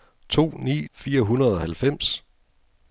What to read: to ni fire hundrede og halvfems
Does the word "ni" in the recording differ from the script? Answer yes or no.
no